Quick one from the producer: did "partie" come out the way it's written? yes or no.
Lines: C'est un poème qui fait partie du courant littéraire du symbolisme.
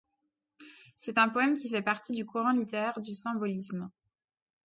yes